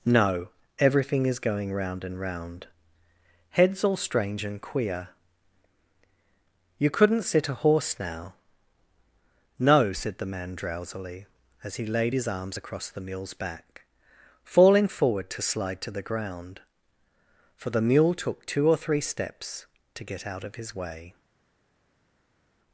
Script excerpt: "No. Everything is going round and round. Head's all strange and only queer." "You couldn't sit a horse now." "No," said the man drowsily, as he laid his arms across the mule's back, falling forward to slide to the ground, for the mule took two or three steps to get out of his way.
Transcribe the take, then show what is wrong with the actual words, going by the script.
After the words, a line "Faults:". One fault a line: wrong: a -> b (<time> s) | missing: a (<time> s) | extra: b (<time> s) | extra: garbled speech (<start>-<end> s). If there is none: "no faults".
"No. Everything is going round and round. Head's all strange and queer." "You couldn't sit a horse now." "No," said the man drowsily, as he laid his arms across the mule's back, falling forward to slide to the ground, for the mule took two or three steps to get out of his way.
Faults:
missing: only (4.6 s)